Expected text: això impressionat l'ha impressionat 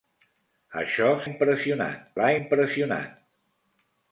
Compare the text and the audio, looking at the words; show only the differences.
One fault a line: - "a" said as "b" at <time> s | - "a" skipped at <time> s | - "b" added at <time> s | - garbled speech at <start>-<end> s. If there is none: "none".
none